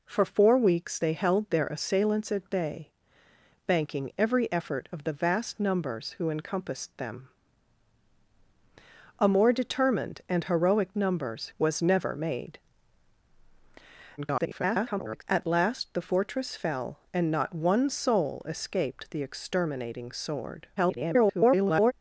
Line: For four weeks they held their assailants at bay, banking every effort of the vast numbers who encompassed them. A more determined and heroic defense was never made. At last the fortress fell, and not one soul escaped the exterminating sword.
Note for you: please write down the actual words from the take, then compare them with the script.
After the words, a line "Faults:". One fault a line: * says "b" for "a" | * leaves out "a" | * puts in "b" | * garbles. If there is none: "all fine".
For four weeks they held their assailants at bay, banking every effort of the vast numbers who encompassed them. A more determined and heroic numbers was never made. [garbled] At last the fortress fell, and not one soul escaped the exterminating sword. [garbled]
Faults:
* says "numbers" for "defense"
* garbles
* garbles